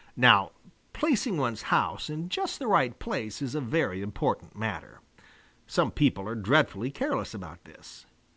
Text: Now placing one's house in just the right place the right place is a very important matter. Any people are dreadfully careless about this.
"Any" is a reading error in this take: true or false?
true